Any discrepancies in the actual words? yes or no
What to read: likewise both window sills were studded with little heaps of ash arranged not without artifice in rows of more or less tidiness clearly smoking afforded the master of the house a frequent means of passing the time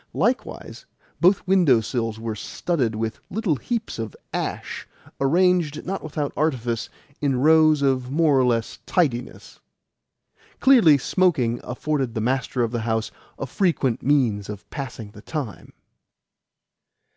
no